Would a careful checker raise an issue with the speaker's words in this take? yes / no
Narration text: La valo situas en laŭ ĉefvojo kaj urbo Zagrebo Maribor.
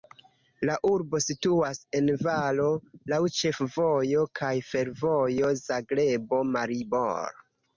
yes